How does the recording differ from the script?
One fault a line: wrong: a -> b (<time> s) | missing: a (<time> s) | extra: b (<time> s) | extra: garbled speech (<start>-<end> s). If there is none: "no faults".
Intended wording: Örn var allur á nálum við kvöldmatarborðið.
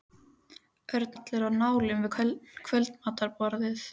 missing: var (1.1 s)